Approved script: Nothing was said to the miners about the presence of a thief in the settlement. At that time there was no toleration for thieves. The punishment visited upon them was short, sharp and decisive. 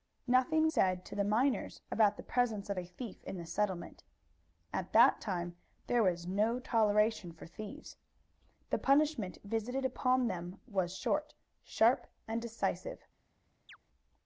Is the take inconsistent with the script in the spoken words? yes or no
yes